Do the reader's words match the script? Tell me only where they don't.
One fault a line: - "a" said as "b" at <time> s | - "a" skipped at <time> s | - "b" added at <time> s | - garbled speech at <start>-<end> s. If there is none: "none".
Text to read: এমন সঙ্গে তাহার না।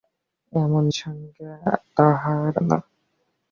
none